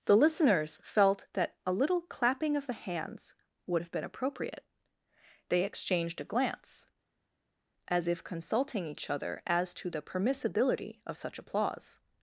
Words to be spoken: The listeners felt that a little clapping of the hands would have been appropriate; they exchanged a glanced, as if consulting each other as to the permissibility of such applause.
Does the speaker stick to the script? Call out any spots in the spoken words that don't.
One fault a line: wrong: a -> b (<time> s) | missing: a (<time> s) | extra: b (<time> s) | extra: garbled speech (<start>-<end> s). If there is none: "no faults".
wrong: glanced -> glance (6.2 s)